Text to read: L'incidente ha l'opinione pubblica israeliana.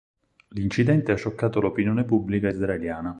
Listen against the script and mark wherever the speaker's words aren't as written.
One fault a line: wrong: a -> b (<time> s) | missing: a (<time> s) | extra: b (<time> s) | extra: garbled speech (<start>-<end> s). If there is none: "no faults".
extra: scioccato (1.1 s)